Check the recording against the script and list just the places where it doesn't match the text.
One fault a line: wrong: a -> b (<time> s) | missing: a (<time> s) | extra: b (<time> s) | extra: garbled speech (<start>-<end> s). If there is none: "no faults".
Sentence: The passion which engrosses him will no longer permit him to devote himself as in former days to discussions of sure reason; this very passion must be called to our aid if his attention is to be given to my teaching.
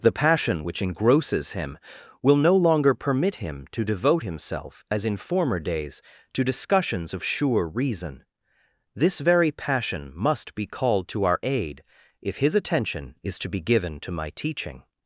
no faults